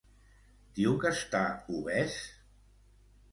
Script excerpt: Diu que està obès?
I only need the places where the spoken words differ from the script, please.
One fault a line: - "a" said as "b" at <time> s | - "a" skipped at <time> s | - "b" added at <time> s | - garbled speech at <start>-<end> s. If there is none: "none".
none